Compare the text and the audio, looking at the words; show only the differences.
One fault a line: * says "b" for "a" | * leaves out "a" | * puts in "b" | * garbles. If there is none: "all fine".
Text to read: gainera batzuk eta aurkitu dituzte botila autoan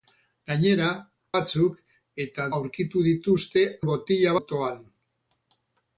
all fine